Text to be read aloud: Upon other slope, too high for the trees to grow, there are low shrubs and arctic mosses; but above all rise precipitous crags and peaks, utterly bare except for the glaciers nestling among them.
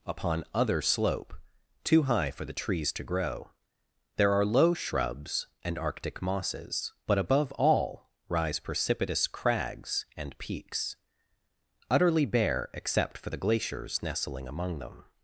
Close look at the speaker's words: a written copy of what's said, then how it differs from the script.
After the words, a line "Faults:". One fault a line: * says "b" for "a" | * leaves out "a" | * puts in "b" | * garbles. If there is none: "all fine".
Upon other slope, too high for the trees to grow, there are low shrubs and arctic mosses; but above all rise precipitous crags and peaks, utterly bare except for the glaciers nestling among them.
Faults:
all fine